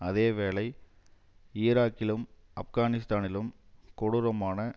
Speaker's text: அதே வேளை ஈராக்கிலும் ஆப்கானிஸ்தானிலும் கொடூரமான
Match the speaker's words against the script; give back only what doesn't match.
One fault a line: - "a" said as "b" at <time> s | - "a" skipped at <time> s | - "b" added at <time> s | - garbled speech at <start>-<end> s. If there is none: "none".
none